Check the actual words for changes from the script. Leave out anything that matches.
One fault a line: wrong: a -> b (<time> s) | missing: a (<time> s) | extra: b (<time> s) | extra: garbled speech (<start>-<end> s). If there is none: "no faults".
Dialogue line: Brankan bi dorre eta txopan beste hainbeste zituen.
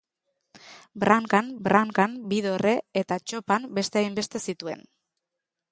extra: brankan (1.7 s)